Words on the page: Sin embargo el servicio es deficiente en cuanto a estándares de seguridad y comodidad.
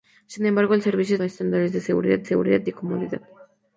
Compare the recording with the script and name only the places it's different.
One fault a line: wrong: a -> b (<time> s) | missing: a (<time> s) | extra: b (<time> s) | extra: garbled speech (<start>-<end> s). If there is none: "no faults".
missing: deficiente en cuanto (1.2 s)
extra: seguridad (2.2 s)